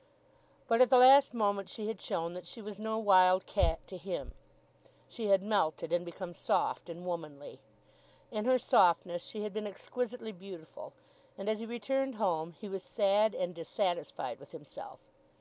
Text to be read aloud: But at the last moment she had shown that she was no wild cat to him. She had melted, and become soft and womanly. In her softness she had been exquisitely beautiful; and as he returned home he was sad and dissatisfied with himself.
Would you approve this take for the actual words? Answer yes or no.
yes